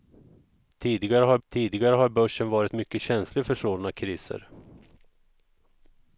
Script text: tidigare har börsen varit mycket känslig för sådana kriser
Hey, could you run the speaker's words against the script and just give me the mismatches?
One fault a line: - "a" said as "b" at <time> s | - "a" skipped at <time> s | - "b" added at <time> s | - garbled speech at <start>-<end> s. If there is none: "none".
- "tidigare har" added at 1.5 s